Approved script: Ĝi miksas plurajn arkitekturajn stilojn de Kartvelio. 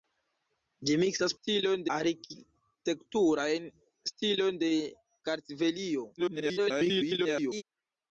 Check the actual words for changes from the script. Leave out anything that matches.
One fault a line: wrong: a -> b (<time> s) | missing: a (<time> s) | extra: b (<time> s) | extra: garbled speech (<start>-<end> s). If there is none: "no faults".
wrong: plurajn -> stilojn (1.4 s)
extra: garbled speech (6.2-7.6 s)